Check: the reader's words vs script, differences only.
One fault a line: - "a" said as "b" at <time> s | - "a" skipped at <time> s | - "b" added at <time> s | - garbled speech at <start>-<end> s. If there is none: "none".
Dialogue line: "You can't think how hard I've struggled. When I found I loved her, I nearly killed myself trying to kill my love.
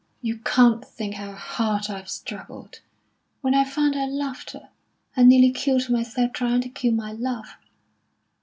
none